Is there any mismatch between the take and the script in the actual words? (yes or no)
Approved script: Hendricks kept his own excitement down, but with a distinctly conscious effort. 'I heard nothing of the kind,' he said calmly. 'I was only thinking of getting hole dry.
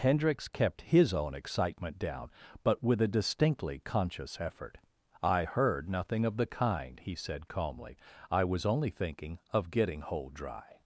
no